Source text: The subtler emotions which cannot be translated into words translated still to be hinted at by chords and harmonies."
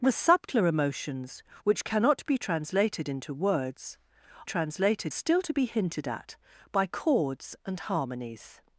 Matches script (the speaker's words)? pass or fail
pass